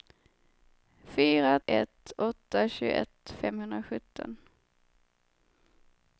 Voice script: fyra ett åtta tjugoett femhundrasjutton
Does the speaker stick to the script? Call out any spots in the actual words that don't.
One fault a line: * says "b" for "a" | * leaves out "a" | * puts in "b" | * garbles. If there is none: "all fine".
all fine